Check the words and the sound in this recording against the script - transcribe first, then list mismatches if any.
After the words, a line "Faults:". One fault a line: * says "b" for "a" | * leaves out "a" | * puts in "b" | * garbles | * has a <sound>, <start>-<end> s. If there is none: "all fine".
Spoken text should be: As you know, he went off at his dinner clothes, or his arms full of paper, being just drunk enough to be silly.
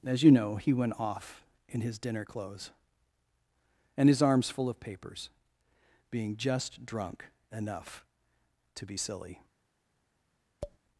As you know, he went off in his dinner clothes, and his arms full of papers, being just drunk enough to be silly.
Faults:
* says "in" for "at"
* says "and" for "or"
* says "papers" for "paper"
* has a tap, 10.6-10.8 s